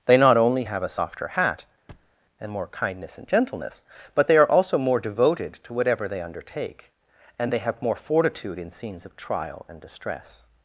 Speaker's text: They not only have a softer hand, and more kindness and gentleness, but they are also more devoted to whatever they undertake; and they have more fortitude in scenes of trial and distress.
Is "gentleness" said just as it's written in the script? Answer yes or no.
yes